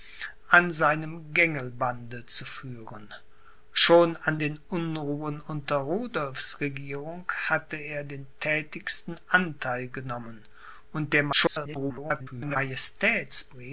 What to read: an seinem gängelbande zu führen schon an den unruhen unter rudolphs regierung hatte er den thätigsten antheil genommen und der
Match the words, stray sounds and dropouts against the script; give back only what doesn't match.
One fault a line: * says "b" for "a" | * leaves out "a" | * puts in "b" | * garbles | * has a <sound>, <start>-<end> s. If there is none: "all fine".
* garbles